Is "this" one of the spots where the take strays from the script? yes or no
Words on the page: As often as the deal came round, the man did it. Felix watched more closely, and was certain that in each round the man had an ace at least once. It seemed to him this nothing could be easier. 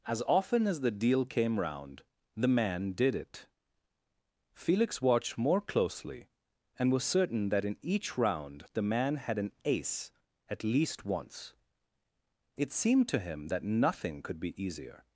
yes